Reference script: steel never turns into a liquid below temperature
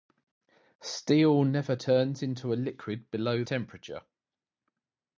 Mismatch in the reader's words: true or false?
false